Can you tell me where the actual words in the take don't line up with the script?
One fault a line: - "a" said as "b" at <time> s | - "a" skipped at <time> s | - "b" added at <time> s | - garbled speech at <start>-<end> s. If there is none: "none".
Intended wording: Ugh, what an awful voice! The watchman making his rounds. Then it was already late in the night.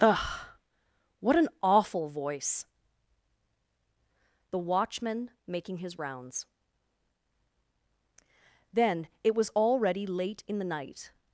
none